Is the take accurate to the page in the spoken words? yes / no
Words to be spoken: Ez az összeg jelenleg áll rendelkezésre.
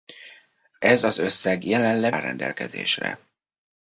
yes